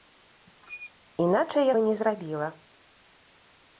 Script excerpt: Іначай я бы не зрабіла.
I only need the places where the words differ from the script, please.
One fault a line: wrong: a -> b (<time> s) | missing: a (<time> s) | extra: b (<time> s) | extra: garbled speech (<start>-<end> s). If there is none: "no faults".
no faults